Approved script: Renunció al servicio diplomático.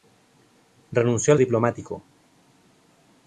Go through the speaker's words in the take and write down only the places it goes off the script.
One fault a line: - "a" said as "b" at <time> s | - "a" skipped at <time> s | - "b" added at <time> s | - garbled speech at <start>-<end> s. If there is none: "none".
- "servicio" skipped at 1.4 s